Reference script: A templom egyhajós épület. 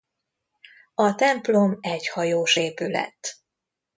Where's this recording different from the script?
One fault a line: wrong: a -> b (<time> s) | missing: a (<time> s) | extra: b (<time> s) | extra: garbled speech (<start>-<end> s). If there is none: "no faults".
no faults